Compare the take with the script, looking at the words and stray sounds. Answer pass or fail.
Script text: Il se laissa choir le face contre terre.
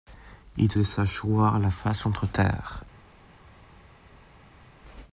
fail